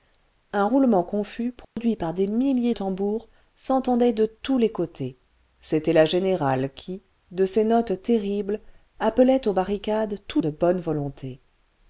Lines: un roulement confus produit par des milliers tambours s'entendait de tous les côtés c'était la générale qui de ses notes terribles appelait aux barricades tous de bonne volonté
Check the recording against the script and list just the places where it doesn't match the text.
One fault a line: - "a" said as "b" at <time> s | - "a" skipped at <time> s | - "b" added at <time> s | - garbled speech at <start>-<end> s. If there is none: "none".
none